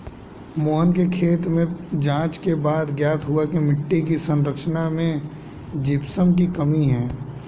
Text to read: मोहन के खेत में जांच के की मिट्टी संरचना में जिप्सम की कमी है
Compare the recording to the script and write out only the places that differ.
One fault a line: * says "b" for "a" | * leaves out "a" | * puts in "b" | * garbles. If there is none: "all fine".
* puts in "बाद ज्ञात हुआ"
* puts in "की"